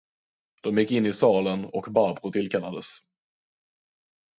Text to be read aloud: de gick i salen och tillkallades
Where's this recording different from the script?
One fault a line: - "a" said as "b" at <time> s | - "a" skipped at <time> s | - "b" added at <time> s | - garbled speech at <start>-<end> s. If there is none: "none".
- "in" added at 0.9 s
- "barbro" added at 1.9 s